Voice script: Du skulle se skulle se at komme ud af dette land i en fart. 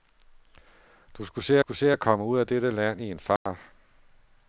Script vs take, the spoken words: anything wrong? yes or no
no